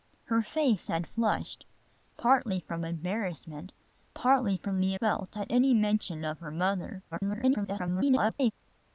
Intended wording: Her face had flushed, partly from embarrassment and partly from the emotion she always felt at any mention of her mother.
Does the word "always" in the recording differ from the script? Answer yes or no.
yes